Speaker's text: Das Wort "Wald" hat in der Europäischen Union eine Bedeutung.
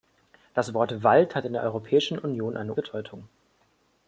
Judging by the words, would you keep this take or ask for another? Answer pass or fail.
pass